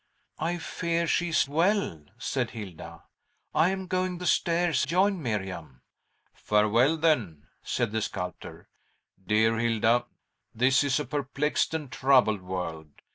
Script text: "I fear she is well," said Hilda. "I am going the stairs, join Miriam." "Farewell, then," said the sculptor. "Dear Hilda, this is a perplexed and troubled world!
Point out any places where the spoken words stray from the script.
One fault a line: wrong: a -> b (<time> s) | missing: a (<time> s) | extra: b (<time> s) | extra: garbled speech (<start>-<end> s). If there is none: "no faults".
no faults